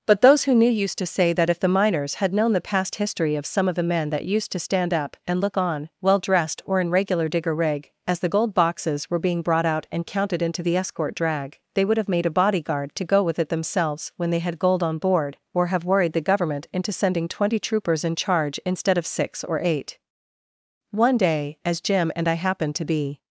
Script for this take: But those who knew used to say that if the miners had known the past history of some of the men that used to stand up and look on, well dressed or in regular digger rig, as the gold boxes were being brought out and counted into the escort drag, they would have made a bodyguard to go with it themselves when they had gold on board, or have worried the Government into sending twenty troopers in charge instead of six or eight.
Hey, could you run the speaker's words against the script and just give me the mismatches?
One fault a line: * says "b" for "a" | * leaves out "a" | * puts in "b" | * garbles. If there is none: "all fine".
* puts in "One day as Jim and I happened to be"